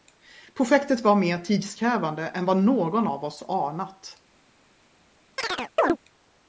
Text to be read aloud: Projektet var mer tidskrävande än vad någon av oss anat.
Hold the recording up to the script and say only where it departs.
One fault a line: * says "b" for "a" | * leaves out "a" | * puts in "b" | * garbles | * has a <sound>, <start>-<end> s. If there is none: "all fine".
* has a chirp, 5.4-6.0 s